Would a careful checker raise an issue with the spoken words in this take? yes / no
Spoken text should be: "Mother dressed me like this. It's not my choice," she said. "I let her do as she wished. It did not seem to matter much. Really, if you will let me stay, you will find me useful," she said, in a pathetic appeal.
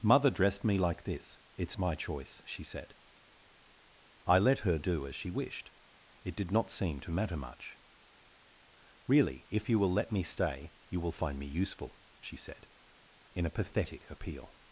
yes